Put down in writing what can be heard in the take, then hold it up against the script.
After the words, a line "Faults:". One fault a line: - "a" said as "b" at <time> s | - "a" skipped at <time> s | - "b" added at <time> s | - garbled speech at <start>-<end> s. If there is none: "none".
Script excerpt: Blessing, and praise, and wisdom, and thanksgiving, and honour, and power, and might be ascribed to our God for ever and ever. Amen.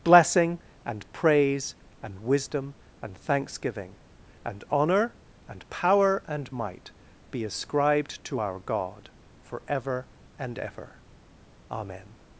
Blessing, and praise, and wisdom, and thanksgiving, and honour, and power, and might be ascribed to our God for ever and ever. Amen.
Faults:
none